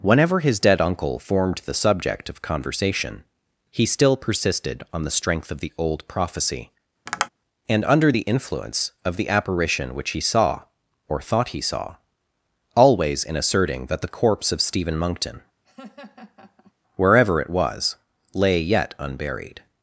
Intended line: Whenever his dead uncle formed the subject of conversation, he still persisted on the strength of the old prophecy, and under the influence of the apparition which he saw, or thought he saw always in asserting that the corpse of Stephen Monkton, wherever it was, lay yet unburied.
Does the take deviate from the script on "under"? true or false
false